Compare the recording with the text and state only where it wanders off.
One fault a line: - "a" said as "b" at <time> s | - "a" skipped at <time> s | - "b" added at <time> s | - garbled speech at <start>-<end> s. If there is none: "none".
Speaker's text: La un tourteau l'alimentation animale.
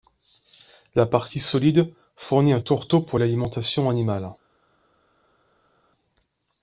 - "partie solide fournit" added at 1.1 s
- "pour" added at 3.0 s